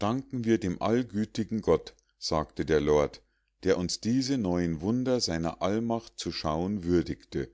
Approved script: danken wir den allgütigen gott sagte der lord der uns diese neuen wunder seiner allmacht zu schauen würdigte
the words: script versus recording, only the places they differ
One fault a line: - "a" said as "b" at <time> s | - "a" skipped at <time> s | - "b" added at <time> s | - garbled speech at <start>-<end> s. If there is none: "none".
- "den" said as "dem" at 0.6 s